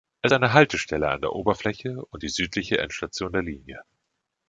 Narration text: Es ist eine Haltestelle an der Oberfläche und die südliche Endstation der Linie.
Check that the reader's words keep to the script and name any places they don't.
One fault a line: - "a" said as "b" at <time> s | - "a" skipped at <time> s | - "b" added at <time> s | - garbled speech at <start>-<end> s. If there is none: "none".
- "ist" skipped at 0.3 s